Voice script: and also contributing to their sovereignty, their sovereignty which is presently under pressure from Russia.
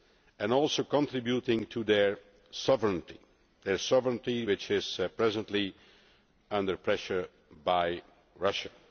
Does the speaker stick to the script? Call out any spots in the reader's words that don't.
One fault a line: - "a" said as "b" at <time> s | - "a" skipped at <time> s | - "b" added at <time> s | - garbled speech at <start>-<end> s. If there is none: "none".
none